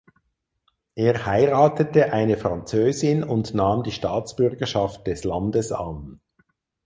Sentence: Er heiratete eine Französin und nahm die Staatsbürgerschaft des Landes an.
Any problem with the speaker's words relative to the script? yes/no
no